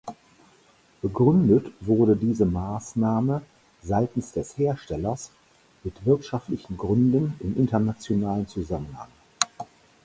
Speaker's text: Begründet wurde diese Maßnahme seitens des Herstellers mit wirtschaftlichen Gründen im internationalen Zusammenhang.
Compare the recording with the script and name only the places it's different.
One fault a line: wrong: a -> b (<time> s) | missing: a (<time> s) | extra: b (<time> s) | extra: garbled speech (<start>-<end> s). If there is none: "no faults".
no faults